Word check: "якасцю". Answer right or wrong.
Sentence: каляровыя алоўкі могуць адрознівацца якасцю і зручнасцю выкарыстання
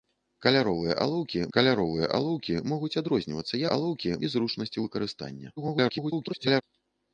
wrong